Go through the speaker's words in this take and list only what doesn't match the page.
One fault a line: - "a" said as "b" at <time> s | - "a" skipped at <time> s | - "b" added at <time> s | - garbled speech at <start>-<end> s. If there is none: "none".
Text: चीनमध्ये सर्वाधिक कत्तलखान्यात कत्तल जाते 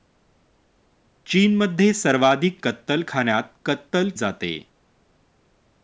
none